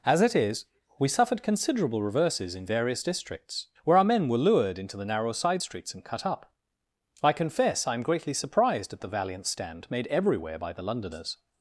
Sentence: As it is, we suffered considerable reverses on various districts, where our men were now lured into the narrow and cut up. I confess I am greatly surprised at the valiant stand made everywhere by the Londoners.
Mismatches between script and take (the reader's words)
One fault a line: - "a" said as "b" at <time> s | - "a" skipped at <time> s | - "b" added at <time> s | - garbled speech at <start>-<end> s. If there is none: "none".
- "on" said as "in" at 2.5 s
- "now" skipped at 4.4 s
- "side streets" added at 5.3 s